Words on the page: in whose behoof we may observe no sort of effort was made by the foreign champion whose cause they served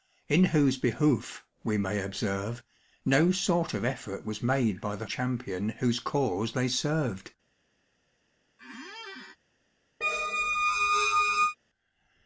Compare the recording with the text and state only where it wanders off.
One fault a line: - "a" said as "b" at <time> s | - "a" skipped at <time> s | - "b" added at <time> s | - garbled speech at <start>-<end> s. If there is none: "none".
- "foreign" skipped at 5.1 s